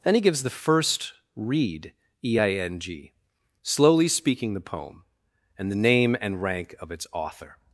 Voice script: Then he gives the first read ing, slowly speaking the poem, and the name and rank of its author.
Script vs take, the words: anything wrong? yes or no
yes